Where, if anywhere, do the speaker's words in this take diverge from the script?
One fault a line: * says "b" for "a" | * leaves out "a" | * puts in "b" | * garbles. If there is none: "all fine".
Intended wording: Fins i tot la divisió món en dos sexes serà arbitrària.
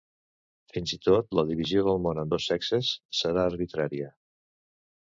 * puts in "del"